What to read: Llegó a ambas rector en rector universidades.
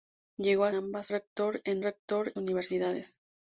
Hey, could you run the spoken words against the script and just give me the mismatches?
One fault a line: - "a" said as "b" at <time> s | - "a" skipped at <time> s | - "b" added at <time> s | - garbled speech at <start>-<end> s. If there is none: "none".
none